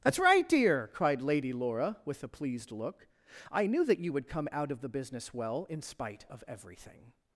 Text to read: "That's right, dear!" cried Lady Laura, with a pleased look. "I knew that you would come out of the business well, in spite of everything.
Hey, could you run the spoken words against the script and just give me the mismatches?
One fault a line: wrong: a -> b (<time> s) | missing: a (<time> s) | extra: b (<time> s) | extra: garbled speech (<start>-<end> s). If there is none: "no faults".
no faults